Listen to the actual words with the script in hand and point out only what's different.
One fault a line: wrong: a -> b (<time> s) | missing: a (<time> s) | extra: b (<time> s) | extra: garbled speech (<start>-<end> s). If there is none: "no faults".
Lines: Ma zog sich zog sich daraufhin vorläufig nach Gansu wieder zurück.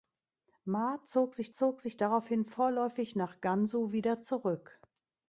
no faults